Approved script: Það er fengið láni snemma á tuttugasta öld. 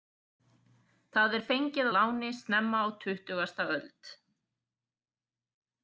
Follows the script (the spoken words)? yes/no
yes